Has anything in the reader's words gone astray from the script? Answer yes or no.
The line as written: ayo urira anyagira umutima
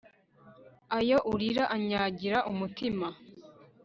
no